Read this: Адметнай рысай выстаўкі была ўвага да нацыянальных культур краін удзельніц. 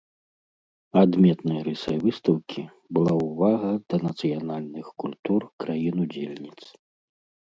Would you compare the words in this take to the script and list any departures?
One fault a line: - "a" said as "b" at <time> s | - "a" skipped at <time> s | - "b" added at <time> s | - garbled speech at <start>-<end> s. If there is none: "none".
none